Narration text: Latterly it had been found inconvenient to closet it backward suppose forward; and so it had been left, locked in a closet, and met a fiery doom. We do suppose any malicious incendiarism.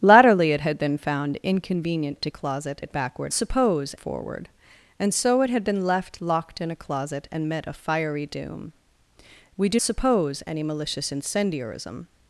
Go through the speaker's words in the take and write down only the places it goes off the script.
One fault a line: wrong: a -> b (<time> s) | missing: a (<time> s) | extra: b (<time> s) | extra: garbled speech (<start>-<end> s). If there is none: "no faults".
no faults